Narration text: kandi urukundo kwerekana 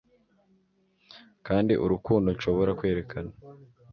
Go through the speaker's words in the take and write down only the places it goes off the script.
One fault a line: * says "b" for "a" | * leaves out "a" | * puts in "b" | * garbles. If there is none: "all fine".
* puts in "nshobora"